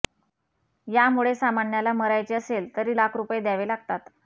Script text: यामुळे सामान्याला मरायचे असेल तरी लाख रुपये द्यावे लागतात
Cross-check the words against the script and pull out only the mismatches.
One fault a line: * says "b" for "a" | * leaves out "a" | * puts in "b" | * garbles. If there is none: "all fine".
all fine